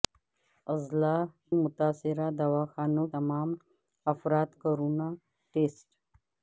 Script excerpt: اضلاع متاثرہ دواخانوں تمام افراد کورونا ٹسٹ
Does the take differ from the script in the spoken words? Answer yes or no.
no